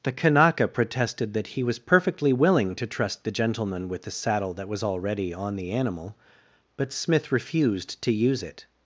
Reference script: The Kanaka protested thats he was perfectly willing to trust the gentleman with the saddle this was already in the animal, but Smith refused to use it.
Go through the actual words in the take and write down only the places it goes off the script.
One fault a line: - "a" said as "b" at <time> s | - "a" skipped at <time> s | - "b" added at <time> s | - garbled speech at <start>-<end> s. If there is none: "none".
- "thats" said as "that" at 1.3 s
- "this" said as "that" at 4.5 s
- "in" said as "on" at 5.3 s